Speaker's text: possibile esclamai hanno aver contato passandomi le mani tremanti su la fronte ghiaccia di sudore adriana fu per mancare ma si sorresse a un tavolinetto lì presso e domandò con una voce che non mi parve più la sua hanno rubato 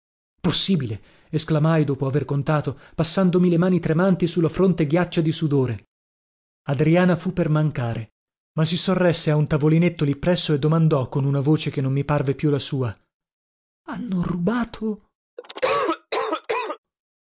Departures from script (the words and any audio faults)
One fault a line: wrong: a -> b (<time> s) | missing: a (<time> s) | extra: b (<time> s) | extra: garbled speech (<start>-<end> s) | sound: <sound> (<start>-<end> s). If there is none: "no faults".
wrong: hanno -> dopo (1.8 s)
sound: cough (15.4-16.8 s)